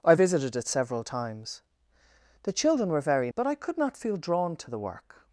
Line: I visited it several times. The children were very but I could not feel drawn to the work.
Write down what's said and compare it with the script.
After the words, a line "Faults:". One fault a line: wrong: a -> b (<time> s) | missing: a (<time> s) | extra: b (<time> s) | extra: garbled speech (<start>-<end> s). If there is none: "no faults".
I visited it several times. The children were very but I could not feel drawn to the work.
Faults:
no faults